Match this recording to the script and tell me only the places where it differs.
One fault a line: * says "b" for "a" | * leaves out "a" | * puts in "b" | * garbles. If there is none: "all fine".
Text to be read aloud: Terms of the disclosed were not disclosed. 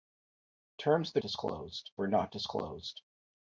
all fine